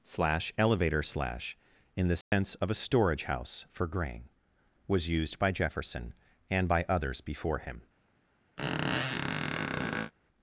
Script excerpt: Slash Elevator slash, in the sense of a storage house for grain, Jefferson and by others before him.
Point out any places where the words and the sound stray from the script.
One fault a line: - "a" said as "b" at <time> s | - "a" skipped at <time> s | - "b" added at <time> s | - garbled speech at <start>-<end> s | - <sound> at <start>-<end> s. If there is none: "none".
- dropout at 2.2-2.3 s
- "was used by" added at 4.9 s
- squeak at 8.6-10.1 s